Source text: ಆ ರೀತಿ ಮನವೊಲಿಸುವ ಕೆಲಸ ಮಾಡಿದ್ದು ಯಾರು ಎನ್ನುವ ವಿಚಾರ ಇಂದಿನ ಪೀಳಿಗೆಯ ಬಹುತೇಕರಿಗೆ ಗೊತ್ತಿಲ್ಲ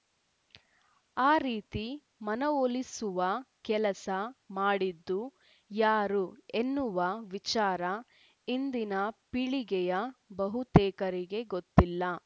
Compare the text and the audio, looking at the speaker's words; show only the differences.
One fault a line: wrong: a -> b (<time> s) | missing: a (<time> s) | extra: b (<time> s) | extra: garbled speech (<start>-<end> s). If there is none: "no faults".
no faults